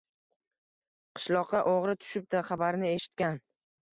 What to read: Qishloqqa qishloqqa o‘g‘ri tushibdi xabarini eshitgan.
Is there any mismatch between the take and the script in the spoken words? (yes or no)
yes